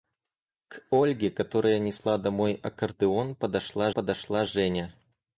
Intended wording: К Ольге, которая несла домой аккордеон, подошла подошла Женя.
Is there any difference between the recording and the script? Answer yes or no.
no